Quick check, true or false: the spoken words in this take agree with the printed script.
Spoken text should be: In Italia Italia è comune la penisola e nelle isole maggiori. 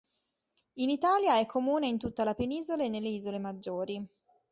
false